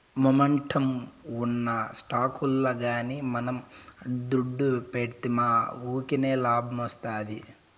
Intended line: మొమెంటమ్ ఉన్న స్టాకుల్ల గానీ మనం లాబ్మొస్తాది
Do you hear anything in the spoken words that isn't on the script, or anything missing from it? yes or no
yes